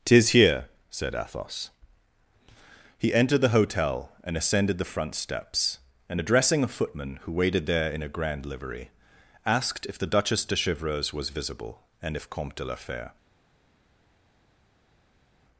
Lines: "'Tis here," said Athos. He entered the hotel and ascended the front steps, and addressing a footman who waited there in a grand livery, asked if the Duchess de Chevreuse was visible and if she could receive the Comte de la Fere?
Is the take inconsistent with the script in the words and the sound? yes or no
yes